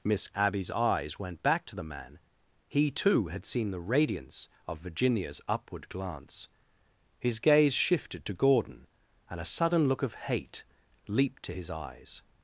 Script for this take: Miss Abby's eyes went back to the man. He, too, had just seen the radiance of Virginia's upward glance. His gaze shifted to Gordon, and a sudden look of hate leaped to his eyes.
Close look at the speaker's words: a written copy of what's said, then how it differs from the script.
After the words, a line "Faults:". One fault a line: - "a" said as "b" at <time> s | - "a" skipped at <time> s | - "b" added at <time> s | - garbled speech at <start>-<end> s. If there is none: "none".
Miss Abby's eyes went back to the man. He, too, had seen the radiance of Virginia's upward glance. His gaze shifted to Gordon, and a sudden look of hate leaped to his eyes.
Faults:
- "just" skipped at 3.5 s